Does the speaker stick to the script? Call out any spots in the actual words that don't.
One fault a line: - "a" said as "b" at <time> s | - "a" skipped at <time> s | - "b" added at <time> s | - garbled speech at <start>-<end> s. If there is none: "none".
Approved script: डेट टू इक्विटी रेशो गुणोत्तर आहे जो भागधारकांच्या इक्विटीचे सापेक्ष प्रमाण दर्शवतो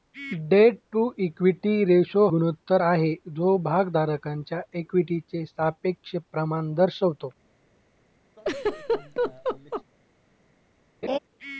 none